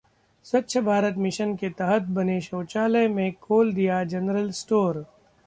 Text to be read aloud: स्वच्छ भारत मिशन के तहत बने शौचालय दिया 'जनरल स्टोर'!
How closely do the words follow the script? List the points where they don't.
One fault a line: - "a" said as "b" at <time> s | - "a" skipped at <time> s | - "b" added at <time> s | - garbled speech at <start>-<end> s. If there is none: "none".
- "में खोल" added at 3.1 s